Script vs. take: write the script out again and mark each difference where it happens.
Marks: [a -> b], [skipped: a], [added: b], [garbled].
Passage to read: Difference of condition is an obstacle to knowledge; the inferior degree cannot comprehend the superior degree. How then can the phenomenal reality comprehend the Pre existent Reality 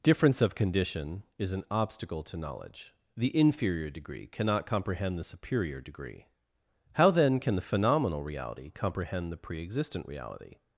Difference of condition is an obstacle to knowledge; the inferior degree cannot comprehend the superior degree. How then can the phenomenal reality comprehend the Pre existent Reality